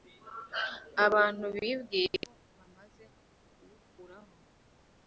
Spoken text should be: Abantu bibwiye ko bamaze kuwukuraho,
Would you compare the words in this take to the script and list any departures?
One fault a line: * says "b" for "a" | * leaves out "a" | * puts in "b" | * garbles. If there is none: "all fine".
all fine